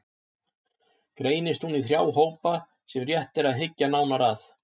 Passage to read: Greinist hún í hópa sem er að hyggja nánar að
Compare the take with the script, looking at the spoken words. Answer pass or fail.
fail